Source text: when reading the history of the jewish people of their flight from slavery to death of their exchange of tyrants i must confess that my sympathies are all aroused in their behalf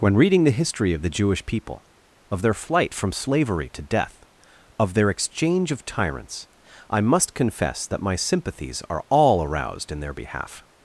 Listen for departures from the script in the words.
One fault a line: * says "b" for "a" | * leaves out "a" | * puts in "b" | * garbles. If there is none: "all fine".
all fine